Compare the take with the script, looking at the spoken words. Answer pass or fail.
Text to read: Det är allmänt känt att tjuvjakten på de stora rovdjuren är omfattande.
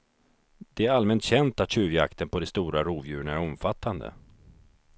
pass